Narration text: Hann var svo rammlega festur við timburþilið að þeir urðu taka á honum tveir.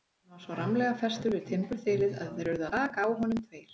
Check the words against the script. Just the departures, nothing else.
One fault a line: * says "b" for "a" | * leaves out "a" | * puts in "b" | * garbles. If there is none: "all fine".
all fine